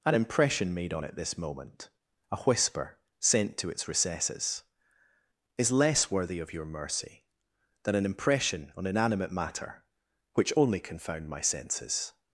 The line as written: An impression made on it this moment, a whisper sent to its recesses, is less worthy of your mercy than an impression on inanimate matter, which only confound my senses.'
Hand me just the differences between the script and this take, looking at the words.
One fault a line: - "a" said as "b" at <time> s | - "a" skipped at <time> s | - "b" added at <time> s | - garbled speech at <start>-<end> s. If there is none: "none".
none